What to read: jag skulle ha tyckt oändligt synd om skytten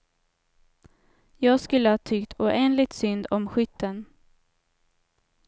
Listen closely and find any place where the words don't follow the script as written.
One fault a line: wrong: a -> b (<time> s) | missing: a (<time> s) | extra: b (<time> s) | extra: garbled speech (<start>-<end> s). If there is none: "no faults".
no faults